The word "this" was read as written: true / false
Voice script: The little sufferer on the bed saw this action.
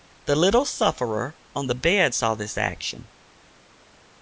true